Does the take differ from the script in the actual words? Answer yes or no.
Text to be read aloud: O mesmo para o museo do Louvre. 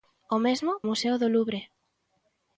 yes